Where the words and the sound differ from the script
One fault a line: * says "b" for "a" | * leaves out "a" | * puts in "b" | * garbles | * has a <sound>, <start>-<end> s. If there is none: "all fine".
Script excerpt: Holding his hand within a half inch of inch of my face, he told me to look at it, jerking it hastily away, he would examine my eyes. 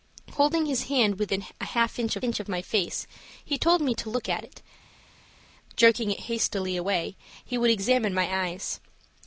all fine